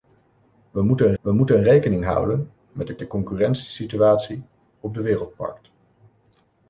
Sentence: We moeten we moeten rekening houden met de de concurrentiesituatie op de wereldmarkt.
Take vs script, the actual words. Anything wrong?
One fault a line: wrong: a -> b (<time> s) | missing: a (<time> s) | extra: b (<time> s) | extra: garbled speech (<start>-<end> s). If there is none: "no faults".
no faults